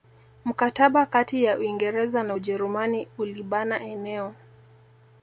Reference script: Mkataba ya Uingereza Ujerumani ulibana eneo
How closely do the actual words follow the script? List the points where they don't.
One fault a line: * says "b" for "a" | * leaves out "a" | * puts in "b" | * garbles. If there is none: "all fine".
* puts in "kati"
* puts in "na"